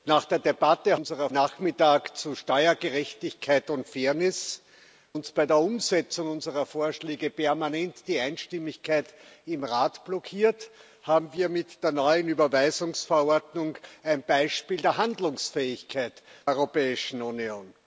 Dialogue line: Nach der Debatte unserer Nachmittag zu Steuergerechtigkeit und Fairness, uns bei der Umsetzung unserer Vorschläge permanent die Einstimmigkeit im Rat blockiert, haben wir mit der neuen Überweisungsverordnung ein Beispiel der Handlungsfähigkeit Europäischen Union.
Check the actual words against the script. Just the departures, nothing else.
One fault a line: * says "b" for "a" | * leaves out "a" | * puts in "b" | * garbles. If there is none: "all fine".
all fine